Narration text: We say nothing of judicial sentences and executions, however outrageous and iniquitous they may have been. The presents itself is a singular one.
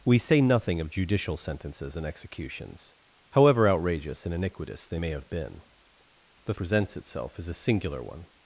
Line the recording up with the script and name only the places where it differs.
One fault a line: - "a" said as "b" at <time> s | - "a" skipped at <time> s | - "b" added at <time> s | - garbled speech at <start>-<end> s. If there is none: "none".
none